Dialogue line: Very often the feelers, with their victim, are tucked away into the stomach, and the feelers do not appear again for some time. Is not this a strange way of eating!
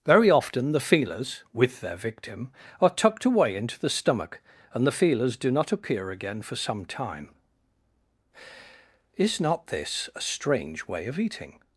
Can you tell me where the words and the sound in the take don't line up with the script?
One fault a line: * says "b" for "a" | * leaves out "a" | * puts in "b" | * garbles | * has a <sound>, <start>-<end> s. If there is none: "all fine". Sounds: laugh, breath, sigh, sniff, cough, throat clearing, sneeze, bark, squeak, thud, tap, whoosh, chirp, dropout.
all fine